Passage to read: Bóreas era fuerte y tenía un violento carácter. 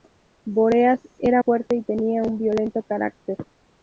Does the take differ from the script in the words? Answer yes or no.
no